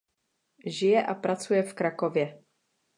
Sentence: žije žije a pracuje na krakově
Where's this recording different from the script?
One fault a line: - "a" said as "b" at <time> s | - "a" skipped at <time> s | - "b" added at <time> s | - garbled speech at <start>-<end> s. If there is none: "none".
- "žije" skipped at 1.1 s
- "na" said as "v" at 1.6 s